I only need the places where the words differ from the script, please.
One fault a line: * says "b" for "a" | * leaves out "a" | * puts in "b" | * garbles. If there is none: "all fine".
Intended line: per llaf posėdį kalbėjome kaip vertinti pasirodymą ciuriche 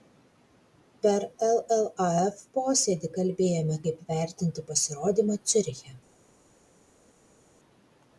all fine